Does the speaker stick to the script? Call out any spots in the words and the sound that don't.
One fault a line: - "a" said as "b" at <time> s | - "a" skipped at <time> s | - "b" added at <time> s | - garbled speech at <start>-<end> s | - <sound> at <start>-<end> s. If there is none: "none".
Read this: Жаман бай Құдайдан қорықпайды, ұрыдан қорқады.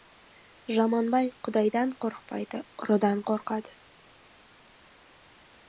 none